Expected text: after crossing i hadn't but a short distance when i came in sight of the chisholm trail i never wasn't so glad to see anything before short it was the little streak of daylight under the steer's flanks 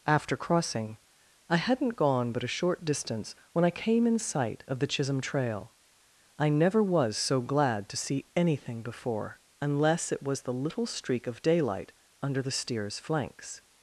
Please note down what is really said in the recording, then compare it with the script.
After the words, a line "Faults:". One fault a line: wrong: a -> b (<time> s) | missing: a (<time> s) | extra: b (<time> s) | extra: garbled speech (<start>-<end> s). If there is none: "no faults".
after crossing i hadn't gone but a short distance when i came in sight of the chisholm trail i never was so glad to see anything before unless it was the little streak of daylight under the steer's flanks
Faults:
extra: gone (1.9 s)
wrong: wasn't -> was (6.8 s)
wrong: short -> unless (9.6 s)